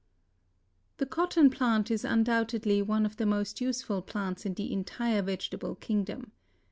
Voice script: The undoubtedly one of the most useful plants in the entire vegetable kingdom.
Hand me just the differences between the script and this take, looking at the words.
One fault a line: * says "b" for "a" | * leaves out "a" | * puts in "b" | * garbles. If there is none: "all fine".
* puts in "cotton plant is"